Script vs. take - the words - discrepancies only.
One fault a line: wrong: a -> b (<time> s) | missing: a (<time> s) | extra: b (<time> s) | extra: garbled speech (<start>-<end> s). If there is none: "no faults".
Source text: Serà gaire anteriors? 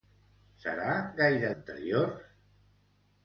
no faults